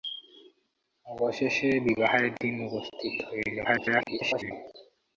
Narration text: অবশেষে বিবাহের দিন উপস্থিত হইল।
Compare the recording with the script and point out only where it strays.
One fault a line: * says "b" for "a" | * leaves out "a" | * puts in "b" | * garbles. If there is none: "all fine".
* garbles